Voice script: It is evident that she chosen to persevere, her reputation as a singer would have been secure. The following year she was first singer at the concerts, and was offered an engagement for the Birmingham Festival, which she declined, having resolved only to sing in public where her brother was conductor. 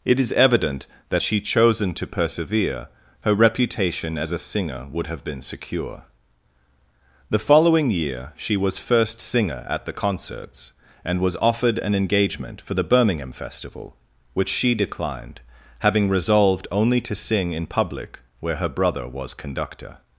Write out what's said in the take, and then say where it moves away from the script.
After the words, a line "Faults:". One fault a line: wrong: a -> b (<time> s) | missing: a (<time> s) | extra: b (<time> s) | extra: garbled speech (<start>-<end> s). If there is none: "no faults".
It is evident that she chosen to persevere, her reputation as a singer would have been secure. The following year she was first singer at the concerts, and was offered an engagement for the Birmingham Festival, which she declined, having resolved only to sing in public where her brother was conductor.
Faults:
no faults